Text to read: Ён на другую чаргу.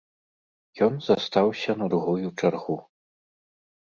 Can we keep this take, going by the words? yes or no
no